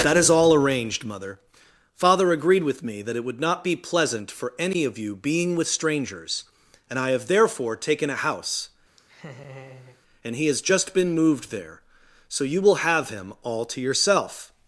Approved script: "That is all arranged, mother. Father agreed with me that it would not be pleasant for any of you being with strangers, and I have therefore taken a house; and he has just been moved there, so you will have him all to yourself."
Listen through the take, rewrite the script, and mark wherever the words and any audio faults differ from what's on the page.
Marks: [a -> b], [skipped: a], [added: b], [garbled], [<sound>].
"That is all arranged, mother. Father agreed with me that it would not be pleasant for any of you being with strangers, and I have therefore taken a house; [laugh] and he has just been moved there, so you will have him all to yourself."